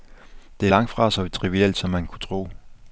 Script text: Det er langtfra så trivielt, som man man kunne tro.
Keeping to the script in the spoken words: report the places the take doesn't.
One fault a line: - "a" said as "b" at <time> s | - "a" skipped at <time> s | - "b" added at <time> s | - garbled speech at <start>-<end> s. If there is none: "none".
- "man" skipped at 2.1 s